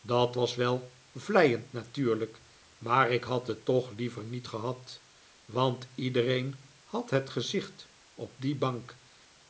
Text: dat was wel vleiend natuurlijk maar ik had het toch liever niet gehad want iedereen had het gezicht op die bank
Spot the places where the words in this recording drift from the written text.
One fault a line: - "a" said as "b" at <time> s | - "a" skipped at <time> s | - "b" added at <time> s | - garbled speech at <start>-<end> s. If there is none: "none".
none